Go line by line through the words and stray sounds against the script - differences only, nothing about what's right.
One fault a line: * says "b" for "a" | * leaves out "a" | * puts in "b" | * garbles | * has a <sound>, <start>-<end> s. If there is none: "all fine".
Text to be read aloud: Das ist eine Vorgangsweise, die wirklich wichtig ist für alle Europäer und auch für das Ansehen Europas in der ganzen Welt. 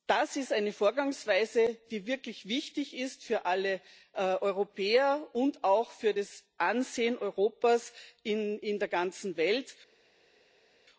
all fine